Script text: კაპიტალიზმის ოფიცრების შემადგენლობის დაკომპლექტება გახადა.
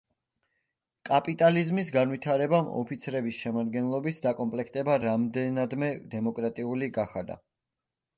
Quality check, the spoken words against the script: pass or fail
fail